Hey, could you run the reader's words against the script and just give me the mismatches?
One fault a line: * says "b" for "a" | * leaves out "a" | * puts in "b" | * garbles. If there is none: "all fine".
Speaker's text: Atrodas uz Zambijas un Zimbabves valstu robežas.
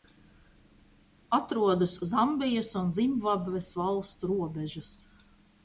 * leaves out "uz"